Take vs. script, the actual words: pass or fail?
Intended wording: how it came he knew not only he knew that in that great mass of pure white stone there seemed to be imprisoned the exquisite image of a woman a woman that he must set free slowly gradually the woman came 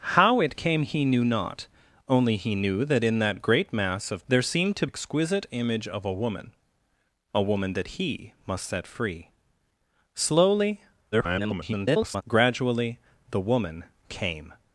fail